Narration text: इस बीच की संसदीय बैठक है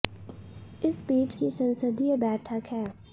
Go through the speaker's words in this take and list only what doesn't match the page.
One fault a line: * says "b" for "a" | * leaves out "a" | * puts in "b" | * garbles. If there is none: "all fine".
all fine